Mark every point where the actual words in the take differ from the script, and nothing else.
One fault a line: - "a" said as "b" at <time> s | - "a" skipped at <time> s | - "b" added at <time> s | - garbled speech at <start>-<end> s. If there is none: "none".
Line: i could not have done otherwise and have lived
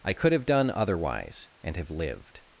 - "not" skipped at 0.3 s